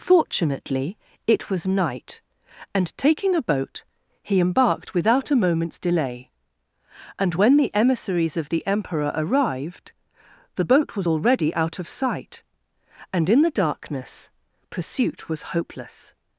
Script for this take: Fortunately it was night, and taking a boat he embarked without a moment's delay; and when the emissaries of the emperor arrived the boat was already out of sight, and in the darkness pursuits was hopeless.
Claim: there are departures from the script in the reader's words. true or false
true